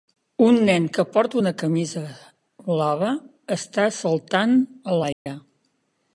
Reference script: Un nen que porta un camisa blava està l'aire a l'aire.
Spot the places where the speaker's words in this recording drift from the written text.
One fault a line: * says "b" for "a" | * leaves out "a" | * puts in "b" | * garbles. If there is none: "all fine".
* says "una" for "un"
* says "saltant" for "l'aire"